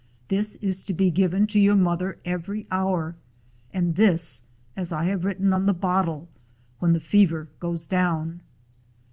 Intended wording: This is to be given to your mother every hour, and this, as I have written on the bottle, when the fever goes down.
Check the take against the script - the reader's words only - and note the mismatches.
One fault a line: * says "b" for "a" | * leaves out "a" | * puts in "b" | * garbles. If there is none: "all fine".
all fine